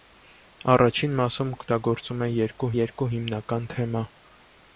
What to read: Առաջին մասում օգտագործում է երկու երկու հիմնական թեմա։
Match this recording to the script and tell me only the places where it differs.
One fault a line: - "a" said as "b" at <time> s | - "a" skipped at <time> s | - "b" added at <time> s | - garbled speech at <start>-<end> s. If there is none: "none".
none